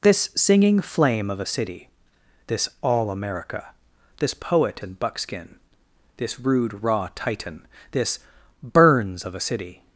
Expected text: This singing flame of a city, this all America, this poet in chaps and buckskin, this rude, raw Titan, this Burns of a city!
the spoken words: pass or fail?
fail